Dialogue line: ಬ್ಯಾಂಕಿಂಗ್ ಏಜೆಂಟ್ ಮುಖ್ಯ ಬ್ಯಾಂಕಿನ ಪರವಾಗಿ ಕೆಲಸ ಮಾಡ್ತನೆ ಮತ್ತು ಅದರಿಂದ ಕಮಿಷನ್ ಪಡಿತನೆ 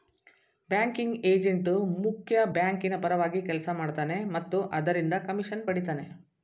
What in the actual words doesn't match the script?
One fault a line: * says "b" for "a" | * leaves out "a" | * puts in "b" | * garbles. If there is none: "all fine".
all fine